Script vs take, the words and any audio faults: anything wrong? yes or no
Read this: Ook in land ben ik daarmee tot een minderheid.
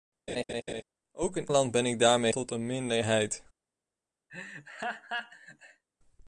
yes